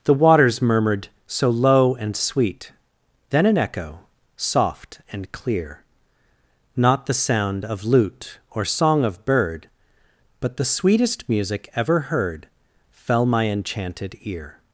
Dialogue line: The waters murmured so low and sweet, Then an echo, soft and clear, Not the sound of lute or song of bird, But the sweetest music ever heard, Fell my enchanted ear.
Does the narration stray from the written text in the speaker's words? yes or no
no